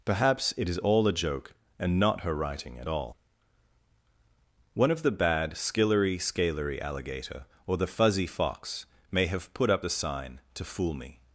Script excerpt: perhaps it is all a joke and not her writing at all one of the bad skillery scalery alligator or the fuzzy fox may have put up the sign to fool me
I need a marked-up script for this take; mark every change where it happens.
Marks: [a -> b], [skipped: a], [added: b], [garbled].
perhaps it is all a joke and not her writing at all one of the bad skillery scalery alligator or the fuzzy fox may have put up the sign to fool me